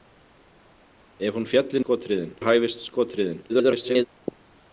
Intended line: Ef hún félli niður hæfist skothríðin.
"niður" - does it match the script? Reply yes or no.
no